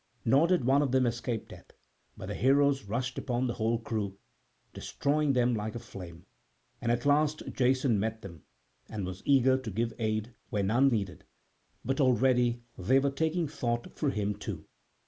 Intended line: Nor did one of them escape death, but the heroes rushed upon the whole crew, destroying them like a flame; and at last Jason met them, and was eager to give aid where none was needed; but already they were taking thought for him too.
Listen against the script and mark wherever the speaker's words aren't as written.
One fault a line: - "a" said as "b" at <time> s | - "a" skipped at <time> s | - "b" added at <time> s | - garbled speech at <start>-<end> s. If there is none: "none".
- "was" skipped at 10.9 s